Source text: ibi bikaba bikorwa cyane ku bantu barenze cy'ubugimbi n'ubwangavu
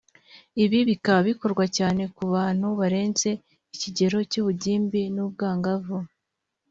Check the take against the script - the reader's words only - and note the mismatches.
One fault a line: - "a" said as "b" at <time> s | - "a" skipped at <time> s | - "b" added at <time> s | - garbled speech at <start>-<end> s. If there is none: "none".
- "ikigero" added at 3.7 s